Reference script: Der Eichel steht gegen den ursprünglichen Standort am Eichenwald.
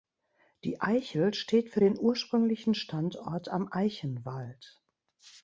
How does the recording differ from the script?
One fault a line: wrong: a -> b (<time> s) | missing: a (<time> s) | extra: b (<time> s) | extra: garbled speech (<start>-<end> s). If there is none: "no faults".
wrong: Der -> Die (0.6 s)
wrong: gegen -> für (1.7 s)